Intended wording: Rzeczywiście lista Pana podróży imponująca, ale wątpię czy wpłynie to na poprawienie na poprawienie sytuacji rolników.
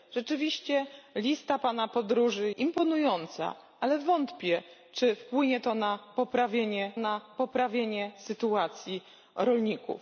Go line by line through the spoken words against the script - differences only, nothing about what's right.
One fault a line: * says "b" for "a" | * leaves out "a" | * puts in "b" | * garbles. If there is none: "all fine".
all fine